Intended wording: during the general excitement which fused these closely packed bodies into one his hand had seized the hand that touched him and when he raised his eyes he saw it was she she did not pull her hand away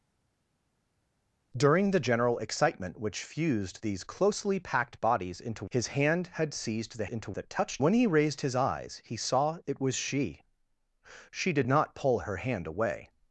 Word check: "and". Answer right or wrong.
wrong